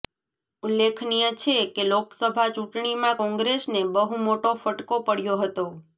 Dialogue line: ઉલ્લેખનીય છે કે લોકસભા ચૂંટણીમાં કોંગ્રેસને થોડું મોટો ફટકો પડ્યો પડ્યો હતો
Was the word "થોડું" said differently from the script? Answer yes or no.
yes